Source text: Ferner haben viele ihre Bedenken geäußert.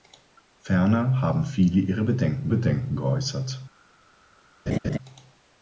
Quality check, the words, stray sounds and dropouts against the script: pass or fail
fail